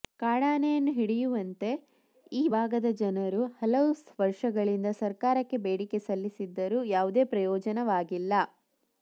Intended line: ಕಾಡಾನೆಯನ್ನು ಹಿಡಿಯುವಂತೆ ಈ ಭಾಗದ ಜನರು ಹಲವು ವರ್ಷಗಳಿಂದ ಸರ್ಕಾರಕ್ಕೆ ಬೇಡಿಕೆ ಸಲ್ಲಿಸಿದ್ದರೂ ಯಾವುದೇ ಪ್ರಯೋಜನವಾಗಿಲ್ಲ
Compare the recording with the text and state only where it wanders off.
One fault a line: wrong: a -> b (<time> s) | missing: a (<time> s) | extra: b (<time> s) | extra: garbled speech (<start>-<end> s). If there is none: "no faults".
no faults